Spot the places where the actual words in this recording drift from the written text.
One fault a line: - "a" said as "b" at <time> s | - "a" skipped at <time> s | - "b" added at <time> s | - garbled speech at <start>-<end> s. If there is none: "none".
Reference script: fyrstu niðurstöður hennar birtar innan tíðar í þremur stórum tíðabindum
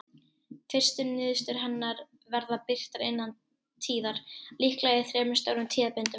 - "verða" added at 2.4 s
- "líklega" added at 4.7 s